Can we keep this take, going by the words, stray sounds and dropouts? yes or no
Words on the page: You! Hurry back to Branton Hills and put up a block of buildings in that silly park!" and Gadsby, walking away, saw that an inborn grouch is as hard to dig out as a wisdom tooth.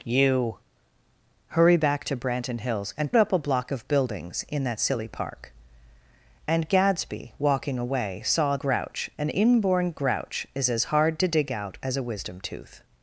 no